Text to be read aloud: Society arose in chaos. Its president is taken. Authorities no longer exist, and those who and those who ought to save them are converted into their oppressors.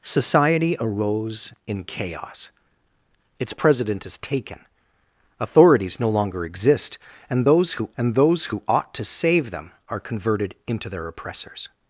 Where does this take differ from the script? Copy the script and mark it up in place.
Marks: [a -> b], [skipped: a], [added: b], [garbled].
Society arose in chaos. Its president is taken. Authorities no longer exist, and those who and those who ought to save them are converted into their oppressors.